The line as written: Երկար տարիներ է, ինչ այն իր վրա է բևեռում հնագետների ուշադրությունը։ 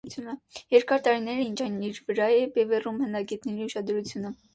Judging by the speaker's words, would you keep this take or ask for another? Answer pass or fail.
pass